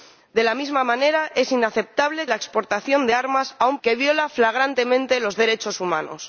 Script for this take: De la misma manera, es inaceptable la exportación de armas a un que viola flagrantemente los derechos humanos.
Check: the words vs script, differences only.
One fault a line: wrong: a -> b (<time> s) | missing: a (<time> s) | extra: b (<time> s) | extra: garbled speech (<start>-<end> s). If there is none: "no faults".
no faults